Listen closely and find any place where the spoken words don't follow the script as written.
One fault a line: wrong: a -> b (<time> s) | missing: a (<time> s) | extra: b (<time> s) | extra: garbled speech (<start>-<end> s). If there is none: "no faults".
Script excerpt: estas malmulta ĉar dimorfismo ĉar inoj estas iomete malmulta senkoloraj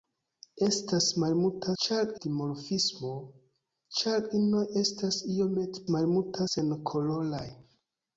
no faults